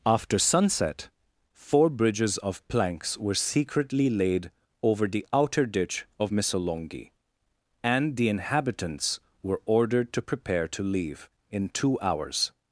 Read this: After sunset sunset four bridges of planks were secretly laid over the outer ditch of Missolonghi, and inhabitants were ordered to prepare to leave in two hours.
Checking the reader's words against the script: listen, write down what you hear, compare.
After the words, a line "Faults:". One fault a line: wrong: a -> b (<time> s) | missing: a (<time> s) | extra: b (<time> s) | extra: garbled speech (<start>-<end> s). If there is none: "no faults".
After sunset four bridges of planks were secretly laid over the outer ditch of Missolonghi, and the inhabitants were ordered to prepare to leave in two hours.
Faults:
missing: sunset (1.1 s)
extra: the (8.2 s)